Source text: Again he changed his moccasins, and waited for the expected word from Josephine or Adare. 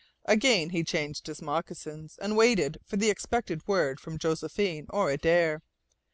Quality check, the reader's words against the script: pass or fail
pass